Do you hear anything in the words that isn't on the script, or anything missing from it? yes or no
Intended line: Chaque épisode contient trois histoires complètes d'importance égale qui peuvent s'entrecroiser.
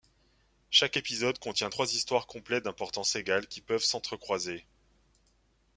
no